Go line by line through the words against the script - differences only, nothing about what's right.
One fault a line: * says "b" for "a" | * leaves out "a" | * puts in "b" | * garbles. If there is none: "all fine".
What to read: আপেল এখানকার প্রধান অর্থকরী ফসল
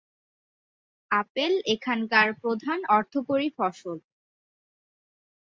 all fine